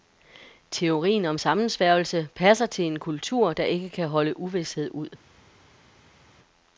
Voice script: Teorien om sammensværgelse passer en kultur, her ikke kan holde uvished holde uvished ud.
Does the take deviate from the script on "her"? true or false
true